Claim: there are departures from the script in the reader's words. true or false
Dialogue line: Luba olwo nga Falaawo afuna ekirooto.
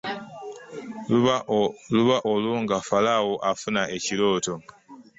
false